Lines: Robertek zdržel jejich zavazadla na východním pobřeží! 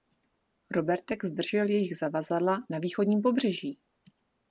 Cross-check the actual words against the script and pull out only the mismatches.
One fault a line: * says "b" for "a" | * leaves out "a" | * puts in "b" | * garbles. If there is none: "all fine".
all fine